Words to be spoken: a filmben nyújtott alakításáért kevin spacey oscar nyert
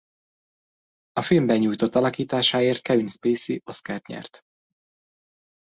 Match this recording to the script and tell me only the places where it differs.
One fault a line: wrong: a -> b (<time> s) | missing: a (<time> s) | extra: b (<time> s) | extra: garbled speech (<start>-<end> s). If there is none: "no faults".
no faults